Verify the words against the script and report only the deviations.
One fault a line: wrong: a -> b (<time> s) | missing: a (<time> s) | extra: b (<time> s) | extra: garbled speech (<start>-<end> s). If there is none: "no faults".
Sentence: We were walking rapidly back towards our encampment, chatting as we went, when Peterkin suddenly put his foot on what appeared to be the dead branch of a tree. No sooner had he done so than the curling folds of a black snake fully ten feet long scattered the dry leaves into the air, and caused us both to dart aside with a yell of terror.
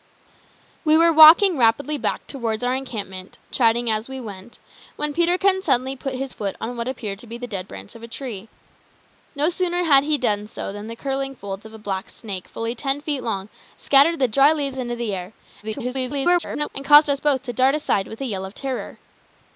extra: garbled speech (15.6-16.7 s)